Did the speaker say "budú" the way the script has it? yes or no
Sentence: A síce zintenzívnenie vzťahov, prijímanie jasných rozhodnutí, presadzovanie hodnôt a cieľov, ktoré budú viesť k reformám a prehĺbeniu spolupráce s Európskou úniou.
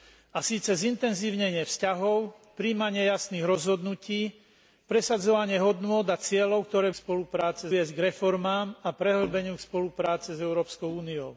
no